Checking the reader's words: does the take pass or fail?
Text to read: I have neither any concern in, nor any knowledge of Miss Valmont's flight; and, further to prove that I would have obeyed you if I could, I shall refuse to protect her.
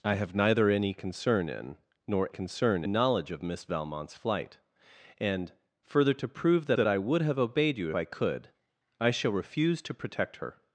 fail